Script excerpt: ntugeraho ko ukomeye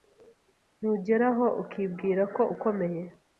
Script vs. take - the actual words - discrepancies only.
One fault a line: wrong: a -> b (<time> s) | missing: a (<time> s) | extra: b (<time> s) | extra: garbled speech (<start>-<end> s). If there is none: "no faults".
extra: ukibwira (1.6 s)